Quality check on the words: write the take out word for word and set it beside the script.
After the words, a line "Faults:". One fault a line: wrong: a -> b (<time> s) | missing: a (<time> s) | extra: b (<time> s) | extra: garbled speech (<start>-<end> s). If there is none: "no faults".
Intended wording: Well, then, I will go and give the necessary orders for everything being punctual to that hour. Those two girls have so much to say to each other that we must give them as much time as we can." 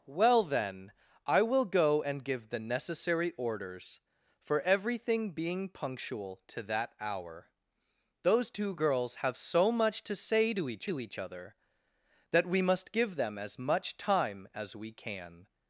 Well, then, I will go and give the necessary orders for everything being punctual to that hour. Those two girls have so much to say to each to each other that we must give them as much time as we can."
Faults:
extra: to each (10.8 s)